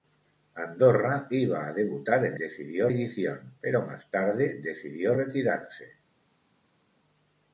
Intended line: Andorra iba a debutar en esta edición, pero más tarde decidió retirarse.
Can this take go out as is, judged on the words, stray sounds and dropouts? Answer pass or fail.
fail